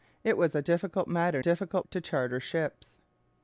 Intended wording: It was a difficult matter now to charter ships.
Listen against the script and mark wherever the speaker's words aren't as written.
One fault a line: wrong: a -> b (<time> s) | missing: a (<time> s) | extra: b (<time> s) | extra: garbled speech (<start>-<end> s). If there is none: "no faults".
wrong: now -> difficult (1.4 s)